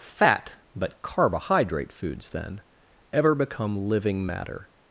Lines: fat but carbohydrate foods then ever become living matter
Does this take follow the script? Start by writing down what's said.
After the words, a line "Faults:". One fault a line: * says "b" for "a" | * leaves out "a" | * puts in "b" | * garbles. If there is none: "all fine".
fat but carbohydrate foods then ever become living matter
Faults:
all fine